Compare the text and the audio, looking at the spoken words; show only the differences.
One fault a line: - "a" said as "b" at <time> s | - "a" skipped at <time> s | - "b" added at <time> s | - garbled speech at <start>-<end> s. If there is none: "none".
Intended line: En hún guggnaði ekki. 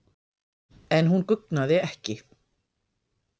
none